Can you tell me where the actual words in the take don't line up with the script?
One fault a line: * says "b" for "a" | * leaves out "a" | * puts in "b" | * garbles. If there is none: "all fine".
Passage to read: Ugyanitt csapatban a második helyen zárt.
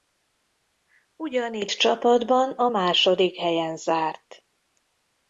all fine